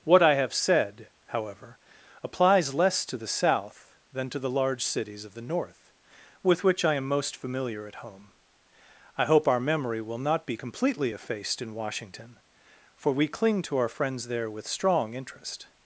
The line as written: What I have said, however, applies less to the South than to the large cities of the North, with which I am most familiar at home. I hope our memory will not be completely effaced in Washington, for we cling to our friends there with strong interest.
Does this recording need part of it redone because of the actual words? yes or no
no